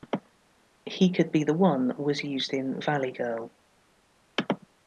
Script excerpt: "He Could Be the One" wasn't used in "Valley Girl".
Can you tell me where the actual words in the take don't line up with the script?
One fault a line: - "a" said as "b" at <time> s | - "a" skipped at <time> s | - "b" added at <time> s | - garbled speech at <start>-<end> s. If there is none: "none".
- "wasn't" said as "was" at 1.9 s